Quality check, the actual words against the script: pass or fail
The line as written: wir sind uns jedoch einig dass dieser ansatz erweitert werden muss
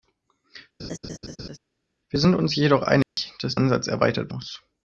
fail